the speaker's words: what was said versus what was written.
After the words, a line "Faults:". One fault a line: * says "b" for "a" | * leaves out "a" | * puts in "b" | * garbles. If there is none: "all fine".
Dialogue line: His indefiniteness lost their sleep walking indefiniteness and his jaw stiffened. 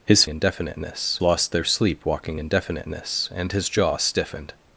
His indefiniteness lost their sleep walking indefiniteness and his jaw stiffened.
Faults:
all fine